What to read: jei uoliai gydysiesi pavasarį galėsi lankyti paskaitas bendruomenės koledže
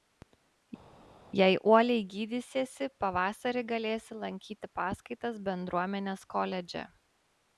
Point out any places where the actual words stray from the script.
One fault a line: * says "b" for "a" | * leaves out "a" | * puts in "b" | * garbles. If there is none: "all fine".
all fine